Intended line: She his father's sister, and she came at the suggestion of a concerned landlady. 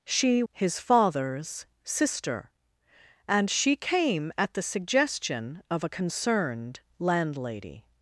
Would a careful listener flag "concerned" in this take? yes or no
no